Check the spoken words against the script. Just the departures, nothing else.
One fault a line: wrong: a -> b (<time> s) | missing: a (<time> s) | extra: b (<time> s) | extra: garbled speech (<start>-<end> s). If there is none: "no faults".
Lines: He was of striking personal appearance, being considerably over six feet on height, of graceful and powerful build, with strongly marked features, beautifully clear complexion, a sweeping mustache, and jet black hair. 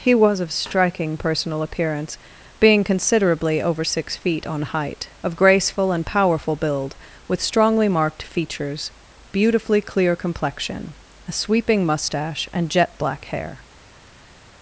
no faults